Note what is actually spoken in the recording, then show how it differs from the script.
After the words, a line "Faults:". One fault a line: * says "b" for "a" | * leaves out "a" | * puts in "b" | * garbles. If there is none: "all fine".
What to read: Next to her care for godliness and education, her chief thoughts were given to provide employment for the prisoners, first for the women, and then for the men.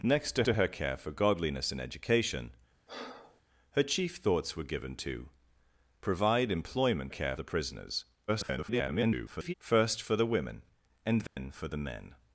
Next to to her care for godliness and education, her chief thoughts were given to provide employment care the prisoners, [garbled] first for the women, and then for the men.
Faults:
* puts in "to"
* says "care" for "for"
* garbles